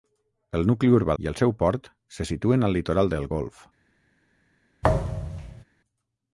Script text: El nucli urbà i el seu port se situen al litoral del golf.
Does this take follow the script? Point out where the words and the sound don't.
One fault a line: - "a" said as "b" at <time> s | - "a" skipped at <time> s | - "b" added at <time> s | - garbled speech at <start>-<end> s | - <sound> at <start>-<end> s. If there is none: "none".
- thud at 4.8-5.6 s